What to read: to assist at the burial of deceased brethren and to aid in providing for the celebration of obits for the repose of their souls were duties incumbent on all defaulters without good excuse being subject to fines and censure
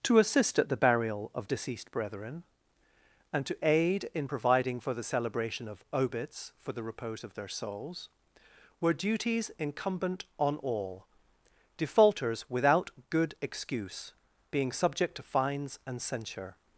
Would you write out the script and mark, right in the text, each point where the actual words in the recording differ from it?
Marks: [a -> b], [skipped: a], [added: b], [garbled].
to assist at the burial of deceased brethren and to aid in providing for the celebration of obits for the repose of their souls were duties incumbent on all defaulters without good excuse being subject to fines and censure